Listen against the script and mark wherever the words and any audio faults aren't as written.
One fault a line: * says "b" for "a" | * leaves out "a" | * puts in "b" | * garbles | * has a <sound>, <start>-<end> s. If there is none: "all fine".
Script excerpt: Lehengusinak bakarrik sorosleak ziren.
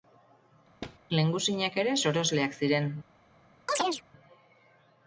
* has a thud, 0.8-1.0 s
* says "ere" for "bakarrik"
* has a chirp, 3.7-4.0 s